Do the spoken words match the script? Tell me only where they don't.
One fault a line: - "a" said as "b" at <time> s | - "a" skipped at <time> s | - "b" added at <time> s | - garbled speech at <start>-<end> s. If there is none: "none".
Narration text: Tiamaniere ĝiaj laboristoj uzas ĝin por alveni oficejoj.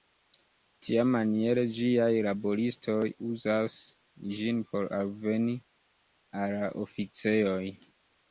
- "al la" added at 6.5 s